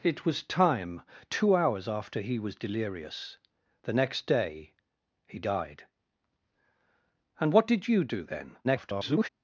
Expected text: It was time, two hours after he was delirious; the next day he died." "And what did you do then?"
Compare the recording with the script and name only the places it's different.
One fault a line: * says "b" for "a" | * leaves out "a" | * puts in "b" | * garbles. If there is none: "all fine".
* garbles